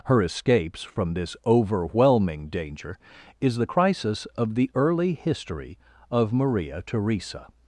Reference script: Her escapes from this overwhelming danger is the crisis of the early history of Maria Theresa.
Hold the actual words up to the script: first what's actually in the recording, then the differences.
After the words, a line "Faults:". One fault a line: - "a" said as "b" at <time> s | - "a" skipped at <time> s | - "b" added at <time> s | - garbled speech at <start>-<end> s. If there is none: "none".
Her escapes from this overwhelming danger is the crisis of the early history of Maria Theresa.
Faults:
none